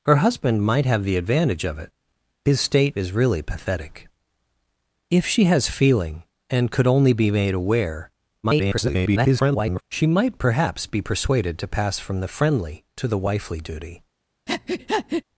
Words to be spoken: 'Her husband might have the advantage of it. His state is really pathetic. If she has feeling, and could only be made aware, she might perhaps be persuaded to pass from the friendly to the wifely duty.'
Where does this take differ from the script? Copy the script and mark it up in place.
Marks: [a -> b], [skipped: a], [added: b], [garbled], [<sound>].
'Her husband might have the advantage of it. His state is really pathetic. If she has feeling, and could only be made aware, [garbled] she might perhaps be persuaded to pass from the friendly to the wifely duty.' [breath]